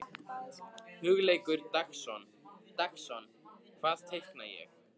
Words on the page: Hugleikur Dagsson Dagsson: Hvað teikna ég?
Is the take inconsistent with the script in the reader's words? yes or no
no